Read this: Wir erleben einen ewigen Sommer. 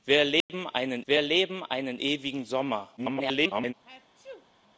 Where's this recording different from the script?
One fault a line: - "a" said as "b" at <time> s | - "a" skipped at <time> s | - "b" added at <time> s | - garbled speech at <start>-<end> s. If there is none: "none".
- "wir erleben einen" added at 1.1 s
- garbled speech at 3.0-3.7 s